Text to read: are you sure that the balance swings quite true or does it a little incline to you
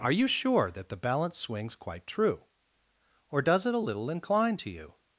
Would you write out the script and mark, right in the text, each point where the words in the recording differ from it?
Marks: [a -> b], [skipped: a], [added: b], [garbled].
are you sure that the balance swings quite true or does it a little incline to you